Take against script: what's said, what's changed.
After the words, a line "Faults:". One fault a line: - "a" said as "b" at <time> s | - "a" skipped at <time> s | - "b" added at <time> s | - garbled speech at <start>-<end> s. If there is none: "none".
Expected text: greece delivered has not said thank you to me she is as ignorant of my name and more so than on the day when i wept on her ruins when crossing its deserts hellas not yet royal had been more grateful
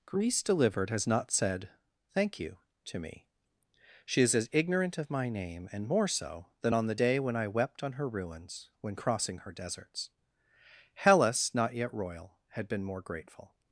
greece delivered has not said thank you to me she is as ignorant of my name and more so than on the day when i wept on her ruins when crossing her deserts hellas not yet royal had been more grateful
Faults:
- "its" said as "her" at 9.4 s